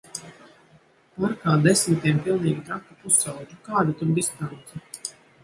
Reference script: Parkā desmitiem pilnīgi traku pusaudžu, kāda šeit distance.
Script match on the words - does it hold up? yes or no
no